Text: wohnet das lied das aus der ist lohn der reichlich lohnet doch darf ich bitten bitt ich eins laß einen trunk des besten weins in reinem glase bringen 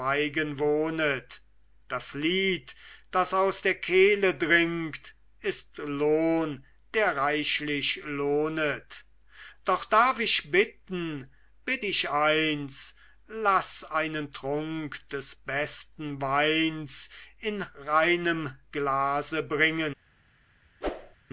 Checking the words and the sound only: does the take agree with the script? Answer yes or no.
no